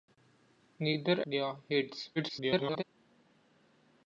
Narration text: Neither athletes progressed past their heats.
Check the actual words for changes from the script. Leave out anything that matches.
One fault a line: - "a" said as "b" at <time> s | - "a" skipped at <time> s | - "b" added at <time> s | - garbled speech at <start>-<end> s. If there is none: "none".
- "athletes progressed past" skipped at 1.2 s
- garbled speech at 2.2-2.8 s